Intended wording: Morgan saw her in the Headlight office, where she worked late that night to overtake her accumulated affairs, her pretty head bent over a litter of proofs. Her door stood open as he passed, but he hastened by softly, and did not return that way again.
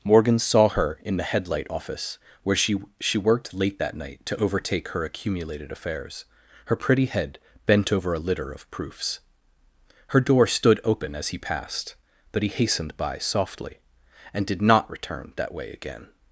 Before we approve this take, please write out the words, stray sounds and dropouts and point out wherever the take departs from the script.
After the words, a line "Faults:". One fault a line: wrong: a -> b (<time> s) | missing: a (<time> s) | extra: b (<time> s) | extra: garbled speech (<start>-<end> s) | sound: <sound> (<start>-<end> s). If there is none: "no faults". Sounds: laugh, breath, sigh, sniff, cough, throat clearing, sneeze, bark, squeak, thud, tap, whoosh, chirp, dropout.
Morgan saw her in the Headlight office, where she she worked late that night to overtake her accumulated affairs, her pretty head bent over a litter of proofs. Her door stood open as he passed, but he hastened by softly, and did not return that way again.
Faults:
extra: she (3.0 s)